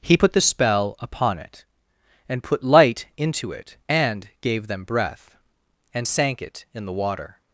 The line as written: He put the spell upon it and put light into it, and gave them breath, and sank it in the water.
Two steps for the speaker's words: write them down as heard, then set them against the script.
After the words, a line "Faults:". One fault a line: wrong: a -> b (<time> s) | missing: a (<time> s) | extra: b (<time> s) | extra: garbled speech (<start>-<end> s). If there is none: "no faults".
He put the spell upon it and put light into it, and gave them breath, and sank it in the water.
Faults:
no faults